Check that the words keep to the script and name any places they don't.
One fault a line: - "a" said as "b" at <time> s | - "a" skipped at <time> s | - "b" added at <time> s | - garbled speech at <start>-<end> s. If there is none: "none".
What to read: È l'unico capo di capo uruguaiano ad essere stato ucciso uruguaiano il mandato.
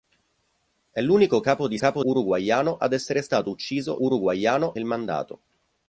none